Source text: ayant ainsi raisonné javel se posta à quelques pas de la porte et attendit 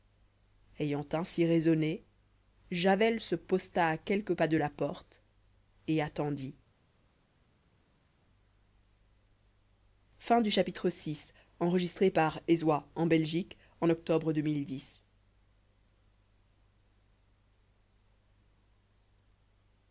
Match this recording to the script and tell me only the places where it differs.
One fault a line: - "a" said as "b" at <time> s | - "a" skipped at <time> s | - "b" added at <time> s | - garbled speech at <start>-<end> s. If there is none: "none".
none